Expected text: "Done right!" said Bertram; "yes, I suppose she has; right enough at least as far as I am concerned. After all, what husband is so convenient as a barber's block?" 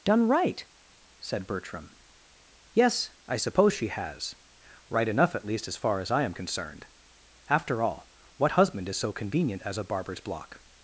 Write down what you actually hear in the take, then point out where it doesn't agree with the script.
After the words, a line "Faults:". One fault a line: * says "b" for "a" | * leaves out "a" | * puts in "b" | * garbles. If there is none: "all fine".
"Done right!" said Bertram; "yes, I suppose she has; right enough at least as far as I am concerned. After all, what husband is so convenient as a barber's block?"
Faults:
all fine